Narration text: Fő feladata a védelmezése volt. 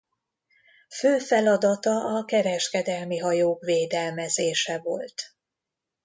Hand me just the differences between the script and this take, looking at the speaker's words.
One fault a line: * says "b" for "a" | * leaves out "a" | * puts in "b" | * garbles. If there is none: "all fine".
* puts in "kereskedelmi hajók"